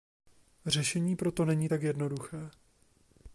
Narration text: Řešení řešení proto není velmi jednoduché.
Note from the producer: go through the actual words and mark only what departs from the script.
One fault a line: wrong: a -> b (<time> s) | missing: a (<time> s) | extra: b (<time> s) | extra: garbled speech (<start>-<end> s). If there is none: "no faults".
missing: řešení (1.1 s)
wrong: velmi -> tak (1.7 s)